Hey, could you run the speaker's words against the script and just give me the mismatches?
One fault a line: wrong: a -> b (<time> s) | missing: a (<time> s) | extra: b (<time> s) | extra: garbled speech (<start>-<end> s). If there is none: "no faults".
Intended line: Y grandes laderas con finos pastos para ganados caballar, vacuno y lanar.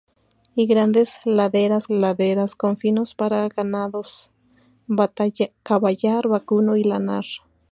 extra: laderas (1.9 s)
missing: pastos (3.1 s)